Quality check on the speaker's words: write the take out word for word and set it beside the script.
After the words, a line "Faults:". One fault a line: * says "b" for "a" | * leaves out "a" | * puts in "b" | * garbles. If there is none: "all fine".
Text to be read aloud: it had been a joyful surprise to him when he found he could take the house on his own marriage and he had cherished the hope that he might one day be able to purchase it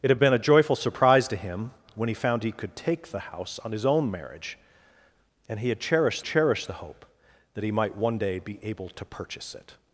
it had been a joyful surprise to him when he found he could take the house on his own marriage and he had cherished cherished the hope that he might one day be able to purchase it
Faults:
* puts in "cherished"